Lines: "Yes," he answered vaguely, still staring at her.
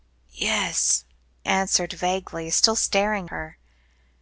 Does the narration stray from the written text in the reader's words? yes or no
yes